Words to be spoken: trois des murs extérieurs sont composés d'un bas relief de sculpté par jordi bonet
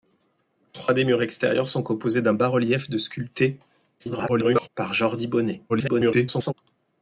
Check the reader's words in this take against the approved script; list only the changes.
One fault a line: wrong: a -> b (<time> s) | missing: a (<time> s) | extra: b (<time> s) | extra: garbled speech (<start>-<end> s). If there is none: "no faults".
extra: garbled speech (4.0-4.7 s)
extra: garbled speech (5.7-6.5 s)